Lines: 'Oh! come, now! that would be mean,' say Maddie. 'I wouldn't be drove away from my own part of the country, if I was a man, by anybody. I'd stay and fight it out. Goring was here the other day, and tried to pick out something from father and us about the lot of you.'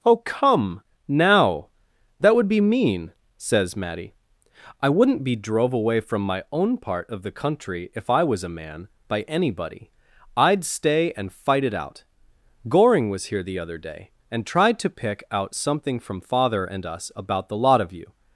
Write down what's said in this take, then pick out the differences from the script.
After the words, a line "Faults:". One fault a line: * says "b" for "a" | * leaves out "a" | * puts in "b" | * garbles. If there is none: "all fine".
'Oh! come, now! that would be mean,' says Maddie. 'I wouldn't be drove away from my own part of the country, if I was a man, by anybody. I'd stay and fight it out. Goring was here the other day, and tried to pick out something from father and us about the lot of you.'
Faults:
* says "says" for "say"